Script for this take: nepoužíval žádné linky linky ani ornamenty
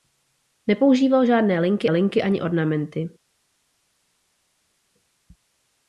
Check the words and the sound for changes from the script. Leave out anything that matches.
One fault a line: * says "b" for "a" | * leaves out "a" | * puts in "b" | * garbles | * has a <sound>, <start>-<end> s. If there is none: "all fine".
all fine